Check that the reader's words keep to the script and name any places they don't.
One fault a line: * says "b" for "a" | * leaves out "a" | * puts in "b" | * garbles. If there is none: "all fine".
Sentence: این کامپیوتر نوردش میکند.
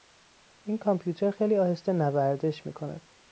* puts in "خیلی آهسته"